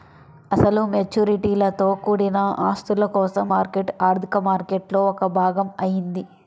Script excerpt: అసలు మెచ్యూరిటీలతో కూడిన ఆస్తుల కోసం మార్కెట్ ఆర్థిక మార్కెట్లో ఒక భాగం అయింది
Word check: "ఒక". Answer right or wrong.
right